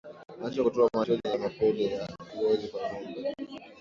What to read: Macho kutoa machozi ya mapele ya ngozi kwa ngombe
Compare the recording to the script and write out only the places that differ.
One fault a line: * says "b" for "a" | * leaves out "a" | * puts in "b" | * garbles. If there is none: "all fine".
all fine